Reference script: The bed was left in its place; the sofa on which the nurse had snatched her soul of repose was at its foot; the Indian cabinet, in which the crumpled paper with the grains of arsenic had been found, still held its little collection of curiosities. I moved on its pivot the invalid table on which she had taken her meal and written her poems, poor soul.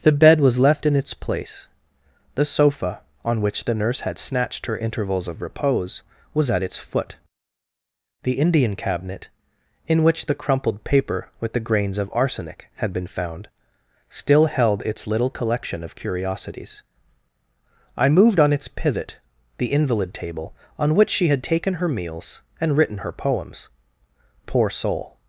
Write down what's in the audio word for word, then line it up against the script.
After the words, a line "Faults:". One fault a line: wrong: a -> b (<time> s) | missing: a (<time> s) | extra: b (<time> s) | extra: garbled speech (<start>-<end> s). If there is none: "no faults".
The bed was left in its place; the sofa on which the nurse had snatched her intervals of repose was at its foot; the Indian cabinet, in which the crumpled paper with the grains of arsenic had been found, still held its little collection of curiosities. I moved on its pivot the invalid table on which she had taken her meals and written her poems, poor soul.
Faults:
wrong: soul -> intervals (4.8 s)
wrong: meal -> meals (21.9 s)